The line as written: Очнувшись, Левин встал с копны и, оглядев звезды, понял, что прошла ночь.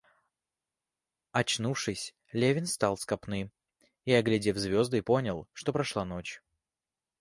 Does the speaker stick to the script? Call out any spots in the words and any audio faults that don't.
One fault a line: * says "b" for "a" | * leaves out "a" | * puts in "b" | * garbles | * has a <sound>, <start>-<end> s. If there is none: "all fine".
all fine